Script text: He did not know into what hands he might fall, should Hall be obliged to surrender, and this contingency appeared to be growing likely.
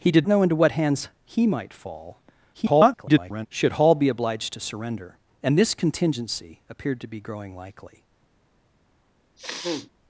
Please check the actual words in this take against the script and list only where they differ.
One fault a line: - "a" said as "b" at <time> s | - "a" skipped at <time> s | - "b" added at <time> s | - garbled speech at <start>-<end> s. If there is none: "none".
- "not" skipped at 0.3 s
- garbled speech at 2.5-3.5 s